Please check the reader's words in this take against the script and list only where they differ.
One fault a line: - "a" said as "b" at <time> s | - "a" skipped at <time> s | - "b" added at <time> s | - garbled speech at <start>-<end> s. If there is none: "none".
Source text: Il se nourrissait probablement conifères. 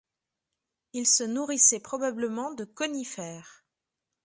- "de" added at 2.5 s